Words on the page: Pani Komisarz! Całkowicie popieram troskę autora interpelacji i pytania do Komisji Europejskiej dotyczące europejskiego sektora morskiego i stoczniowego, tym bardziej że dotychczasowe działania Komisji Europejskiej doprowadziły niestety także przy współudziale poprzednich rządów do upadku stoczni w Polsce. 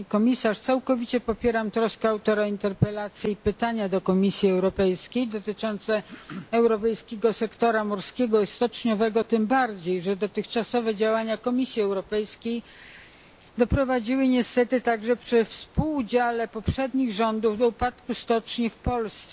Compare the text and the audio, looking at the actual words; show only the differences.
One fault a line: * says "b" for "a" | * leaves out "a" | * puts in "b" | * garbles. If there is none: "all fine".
all fine